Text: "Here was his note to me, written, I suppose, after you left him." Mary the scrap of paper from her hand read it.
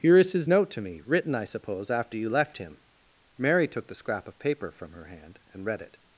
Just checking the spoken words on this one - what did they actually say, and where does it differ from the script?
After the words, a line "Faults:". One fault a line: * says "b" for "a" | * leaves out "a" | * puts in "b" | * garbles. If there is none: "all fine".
"Here is his note to me, written, I suppose, after you left him." Mary took the scrap of paper from her hand and read it.
Faults:
* says "is" for "was"
* puts in "took"
* puts in "and"